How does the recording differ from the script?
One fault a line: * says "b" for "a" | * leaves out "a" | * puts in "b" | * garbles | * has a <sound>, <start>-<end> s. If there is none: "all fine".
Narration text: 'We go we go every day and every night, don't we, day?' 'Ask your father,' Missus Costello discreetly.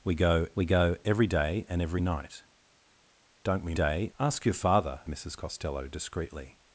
all fine